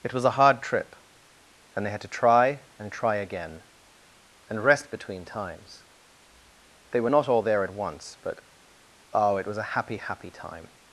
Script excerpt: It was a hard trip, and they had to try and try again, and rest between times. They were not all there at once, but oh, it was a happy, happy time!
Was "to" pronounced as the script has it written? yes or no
yes